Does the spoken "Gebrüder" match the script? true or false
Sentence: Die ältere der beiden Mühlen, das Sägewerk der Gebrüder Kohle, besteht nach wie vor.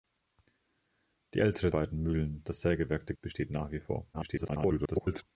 false